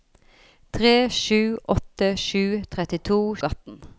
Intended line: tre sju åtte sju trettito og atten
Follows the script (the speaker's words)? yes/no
yes